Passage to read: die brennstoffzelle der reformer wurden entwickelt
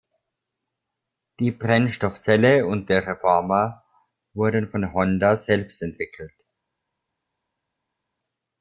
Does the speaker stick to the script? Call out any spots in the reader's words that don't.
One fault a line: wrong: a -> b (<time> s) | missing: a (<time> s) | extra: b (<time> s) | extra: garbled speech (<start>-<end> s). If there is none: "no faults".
extra: und (2.6 s)
extra: von honda selbst (4.7 s)